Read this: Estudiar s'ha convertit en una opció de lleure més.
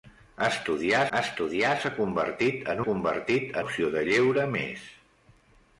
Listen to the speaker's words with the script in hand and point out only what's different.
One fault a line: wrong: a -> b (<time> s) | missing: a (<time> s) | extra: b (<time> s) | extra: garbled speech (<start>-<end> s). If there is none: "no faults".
extra: estudiar (1.2 s)
wrong: una -> convertit (2.8 s)